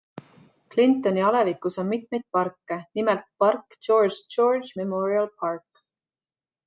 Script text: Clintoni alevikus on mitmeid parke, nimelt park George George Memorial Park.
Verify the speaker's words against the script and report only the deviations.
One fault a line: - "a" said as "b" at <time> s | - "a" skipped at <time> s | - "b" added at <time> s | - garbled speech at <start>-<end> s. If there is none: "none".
none